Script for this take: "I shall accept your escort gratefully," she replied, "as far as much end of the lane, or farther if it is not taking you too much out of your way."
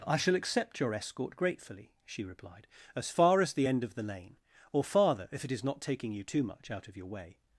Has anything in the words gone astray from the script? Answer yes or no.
yes